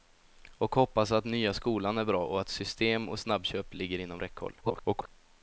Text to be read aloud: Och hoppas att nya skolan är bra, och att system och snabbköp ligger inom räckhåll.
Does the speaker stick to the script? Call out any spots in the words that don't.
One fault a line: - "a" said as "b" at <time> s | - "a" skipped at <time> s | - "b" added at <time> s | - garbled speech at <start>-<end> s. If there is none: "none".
- garbled speech at 4.6-5.1 s